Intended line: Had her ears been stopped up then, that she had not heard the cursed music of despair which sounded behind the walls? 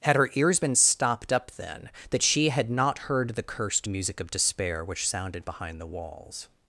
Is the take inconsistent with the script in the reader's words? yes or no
no